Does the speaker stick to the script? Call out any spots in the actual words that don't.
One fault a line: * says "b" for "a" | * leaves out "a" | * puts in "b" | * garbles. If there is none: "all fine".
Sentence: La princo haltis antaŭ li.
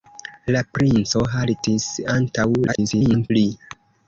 * garbles